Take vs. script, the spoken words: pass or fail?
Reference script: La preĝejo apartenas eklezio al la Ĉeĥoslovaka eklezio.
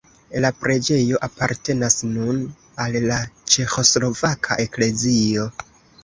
fail